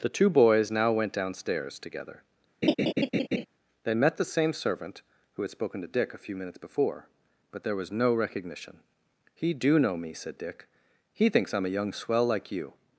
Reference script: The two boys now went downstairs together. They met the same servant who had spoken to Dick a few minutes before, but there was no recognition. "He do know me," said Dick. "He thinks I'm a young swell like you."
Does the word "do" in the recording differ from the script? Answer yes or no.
no